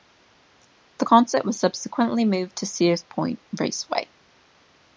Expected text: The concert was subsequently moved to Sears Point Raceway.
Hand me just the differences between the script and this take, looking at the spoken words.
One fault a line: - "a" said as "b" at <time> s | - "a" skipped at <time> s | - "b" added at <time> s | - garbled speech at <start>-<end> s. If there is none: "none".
none